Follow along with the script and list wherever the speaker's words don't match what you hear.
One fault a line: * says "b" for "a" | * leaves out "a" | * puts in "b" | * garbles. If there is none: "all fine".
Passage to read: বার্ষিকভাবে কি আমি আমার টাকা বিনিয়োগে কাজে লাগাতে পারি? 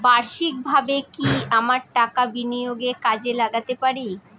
* leaves out "আমি"